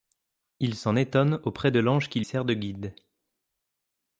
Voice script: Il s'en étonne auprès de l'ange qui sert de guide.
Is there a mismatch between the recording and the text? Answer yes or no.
no